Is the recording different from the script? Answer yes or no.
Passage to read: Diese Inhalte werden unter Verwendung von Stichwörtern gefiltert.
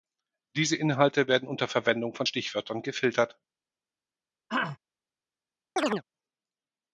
no